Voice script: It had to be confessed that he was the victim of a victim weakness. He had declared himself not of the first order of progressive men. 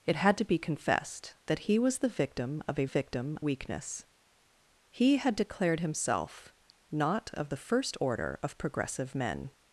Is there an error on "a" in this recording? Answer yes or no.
no